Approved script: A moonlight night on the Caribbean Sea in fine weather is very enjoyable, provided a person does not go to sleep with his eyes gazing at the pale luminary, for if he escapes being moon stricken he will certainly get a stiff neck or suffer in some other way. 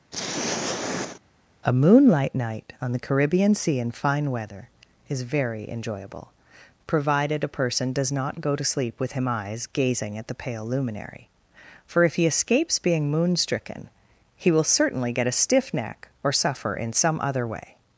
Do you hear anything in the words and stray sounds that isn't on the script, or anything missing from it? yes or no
yes